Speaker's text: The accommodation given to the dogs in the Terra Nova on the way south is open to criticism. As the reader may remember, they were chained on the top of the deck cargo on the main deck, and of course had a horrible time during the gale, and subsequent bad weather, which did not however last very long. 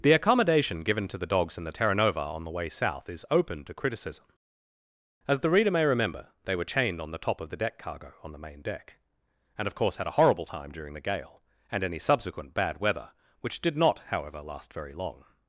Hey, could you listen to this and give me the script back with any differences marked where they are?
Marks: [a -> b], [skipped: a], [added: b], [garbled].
The accommodation given to the dogs in the Terra Nova on the way south is open to criticism. As the reader may remember, they were chained on the top of the deck cargo on the main deck, and of course had a horrible time during the gale, and [added: any] subsequent bad weather, which did not however last very long.